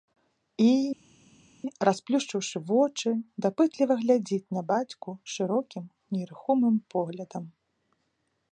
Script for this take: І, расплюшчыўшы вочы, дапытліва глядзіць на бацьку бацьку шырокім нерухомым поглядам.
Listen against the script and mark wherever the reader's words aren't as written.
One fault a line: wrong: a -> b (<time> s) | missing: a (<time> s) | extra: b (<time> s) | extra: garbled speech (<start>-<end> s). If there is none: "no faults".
missing: бацьку (5.1 s)